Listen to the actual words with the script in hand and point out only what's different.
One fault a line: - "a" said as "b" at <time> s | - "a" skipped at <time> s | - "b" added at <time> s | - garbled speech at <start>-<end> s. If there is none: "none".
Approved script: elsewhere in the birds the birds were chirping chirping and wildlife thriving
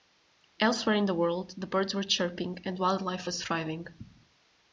- "birds" said as "world" at 1.1 s
- "chirping" skipped at 2.6 s
- "was" added at 3.2 s